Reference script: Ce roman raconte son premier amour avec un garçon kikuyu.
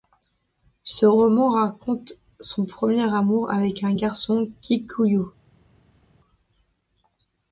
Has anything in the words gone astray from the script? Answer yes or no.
no